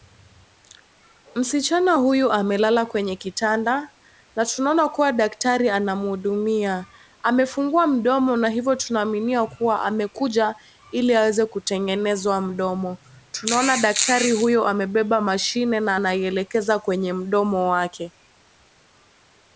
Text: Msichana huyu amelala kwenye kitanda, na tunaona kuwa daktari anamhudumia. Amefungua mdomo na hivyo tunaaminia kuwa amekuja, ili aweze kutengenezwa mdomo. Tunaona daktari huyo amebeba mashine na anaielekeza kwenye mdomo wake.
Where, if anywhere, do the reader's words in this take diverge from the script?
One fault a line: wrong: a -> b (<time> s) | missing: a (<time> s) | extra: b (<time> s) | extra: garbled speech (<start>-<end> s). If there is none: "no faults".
no faults